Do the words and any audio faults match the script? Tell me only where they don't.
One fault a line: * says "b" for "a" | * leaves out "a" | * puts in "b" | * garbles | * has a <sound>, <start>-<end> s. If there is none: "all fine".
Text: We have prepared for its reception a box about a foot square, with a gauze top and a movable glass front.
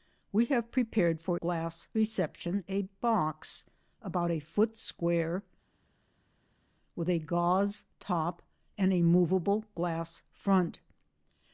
* says "glass" for "its"